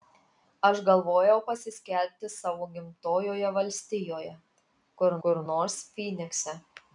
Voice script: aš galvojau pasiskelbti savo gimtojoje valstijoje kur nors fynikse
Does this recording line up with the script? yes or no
no